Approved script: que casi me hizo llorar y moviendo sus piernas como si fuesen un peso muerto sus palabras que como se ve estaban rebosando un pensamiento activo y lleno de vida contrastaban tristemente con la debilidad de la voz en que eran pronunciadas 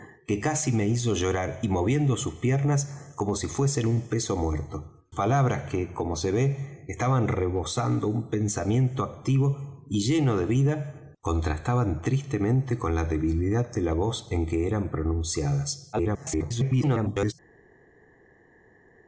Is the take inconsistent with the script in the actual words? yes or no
yes